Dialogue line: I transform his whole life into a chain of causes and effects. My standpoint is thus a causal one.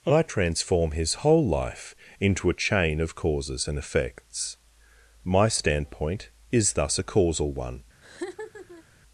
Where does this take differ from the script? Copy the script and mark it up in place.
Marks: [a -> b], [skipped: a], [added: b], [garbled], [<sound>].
I transform his whole life into a chain of causes and effects. My standpoint is thus a causal one. [laugh]